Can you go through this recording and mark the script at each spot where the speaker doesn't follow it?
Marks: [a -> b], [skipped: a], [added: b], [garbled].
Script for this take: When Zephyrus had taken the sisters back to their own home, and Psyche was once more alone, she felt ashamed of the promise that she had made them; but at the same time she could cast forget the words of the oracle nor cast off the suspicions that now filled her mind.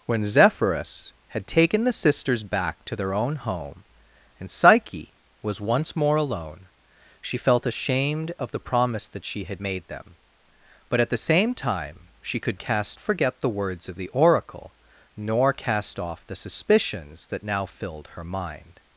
When Zephyrus had taken the sisters back to their own home, and Psyche was once more alone, she felt ashamed of the promise that she had made them; but at the same time she could cast forget the words of the oracle nor cast off the suspicions that now filled her mind.